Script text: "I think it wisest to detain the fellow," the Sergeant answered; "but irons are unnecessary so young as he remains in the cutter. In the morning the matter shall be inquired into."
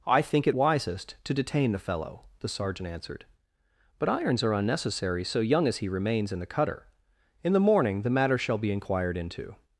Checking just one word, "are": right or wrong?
right